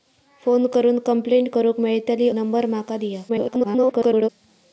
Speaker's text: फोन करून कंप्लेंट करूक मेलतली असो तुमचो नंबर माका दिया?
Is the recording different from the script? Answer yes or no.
yes